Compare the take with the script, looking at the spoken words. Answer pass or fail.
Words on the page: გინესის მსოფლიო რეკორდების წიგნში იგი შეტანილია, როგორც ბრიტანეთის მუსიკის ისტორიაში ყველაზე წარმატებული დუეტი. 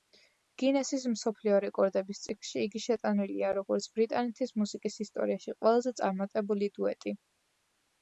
pass